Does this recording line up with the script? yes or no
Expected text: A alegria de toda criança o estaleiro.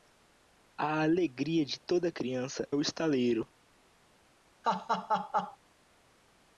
yes